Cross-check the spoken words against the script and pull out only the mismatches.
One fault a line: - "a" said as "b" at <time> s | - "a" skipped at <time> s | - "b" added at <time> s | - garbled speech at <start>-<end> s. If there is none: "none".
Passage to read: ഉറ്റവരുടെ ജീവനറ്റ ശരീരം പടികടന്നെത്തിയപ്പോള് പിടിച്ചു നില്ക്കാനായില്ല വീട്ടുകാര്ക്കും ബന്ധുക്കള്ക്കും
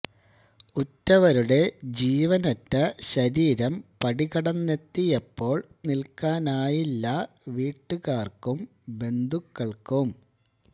- "പിടിച്ചു" skipped at 5.6 s